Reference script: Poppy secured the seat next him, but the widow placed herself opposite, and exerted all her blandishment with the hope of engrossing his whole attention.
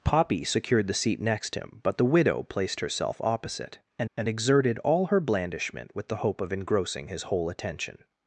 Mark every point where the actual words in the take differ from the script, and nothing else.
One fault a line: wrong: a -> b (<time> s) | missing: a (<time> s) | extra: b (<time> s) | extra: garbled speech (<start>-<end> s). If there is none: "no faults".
extra: and (4.2 s)